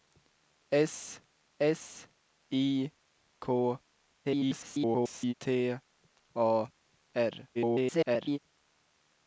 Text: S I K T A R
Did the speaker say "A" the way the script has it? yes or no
yes